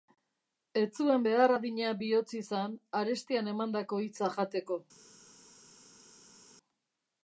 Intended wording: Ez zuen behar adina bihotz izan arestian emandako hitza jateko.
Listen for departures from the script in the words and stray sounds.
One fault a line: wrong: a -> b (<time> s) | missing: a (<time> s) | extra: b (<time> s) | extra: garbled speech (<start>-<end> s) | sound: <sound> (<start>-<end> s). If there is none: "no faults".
no faults